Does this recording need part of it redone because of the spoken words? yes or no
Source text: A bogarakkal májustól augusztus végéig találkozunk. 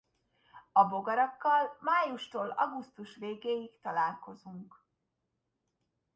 no